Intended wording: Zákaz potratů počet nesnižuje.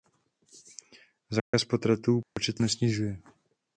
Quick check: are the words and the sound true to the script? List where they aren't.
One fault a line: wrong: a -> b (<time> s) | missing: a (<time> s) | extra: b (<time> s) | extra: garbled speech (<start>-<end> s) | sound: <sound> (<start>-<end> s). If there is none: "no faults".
sound: dropout (1.4-1.5 s)
sound: dropout (2.2-2.4 s)